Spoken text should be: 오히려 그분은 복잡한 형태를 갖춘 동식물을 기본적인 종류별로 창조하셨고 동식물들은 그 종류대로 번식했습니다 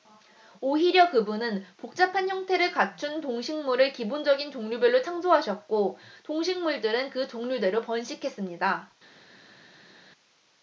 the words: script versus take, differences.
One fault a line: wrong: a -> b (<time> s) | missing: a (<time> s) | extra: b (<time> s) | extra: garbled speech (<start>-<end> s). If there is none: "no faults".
no faults